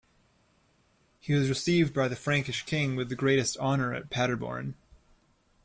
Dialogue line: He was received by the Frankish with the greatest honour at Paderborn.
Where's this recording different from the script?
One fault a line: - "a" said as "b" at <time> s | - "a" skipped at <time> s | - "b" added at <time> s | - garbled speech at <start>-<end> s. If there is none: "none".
- "king" added at 2.7 s